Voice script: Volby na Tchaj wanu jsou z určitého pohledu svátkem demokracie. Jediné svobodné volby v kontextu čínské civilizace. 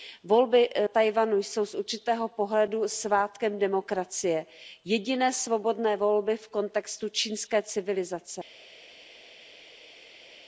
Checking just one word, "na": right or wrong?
wrong